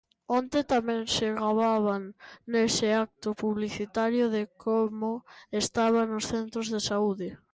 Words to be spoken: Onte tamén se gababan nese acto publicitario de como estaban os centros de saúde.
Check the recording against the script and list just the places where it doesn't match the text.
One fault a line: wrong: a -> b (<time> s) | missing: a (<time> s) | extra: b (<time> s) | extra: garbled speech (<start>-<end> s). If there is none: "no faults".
no faults